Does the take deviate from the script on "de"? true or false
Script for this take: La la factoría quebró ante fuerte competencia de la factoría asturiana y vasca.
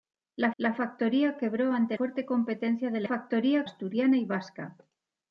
false